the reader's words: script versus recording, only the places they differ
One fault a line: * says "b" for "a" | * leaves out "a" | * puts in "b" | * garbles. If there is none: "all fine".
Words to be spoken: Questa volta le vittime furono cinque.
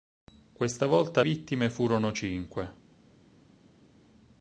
* leaves out "le"